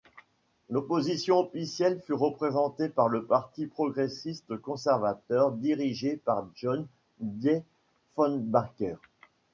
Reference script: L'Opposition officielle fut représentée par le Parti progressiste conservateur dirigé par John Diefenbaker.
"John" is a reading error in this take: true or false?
false